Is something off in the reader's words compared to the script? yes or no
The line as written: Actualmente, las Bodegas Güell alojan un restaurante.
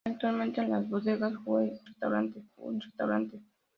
yes